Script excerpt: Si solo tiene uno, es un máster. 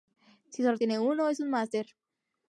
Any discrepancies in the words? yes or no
no